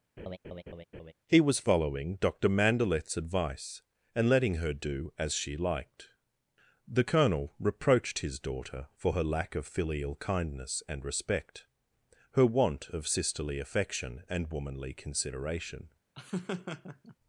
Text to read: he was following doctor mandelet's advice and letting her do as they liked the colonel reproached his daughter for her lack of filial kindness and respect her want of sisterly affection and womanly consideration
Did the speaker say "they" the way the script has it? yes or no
no